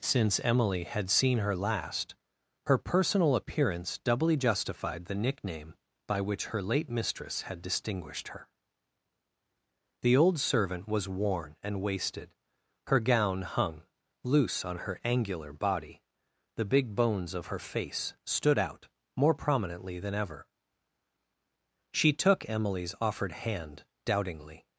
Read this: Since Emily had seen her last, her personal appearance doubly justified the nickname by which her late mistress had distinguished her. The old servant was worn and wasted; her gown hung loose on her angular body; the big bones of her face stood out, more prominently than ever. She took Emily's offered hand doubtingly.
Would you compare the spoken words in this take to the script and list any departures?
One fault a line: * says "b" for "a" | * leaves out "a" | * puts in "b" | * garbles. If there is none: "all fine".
all fine